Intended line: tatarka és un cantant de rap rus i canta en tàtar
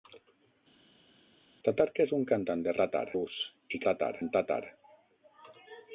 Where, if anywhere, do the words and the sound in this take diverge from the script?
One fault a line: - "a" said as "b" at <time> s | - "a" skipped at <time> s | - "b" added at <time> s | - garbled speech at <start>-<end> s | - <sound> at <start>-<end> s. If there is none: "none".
- "rap" said as "tàtar" at 2.8 s
- "canta" said as "tàtar" at 3.9 s